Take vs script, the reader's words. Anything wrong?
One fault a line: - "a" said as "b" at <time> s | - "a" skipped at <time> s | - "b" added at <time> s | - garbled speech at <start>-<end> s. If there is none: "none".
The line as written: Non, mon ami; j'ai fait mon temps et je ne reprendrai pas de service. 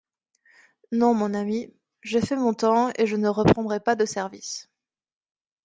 none